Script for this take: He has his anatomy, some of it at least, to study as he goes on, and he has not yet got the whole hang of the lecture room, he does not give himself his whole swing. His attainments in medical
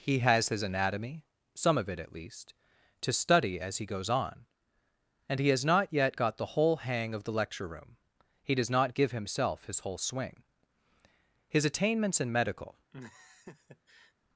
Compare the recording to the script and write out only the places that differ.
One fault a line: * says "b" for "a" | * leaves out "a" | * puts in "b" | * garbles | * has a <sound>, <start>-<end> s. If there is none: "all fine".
* has a laugh, 12.9-14.1 s